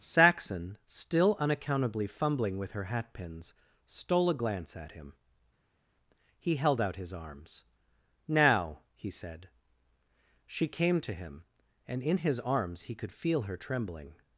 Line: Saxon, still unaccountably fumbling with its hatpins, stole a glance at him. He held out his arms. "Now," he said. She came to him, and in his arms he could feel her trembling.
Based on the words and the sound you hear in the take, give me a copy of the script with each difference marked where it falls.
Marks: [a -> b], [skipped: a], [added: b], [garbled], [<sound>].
Saxon, still unaccountably fumbling with [its -> her] hatpins, stole a glance at him. He held out his arms. "Now," he said. She came to him, and in his arms he could feel her trembling.